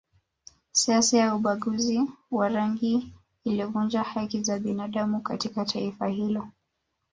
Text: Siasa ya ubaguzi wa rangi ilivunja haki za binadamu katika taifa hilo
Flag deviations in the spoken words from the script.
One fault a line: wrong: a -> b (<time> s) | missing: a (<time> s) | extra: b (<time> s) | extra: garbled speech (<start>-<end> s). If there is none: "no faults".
no faults